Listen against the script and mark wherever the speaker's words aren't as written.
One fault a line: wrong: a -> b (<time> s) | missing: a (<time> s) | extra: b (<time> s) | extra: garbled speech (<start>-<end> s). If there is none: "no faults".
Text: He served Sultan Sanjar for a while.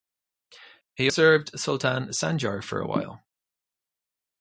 no faults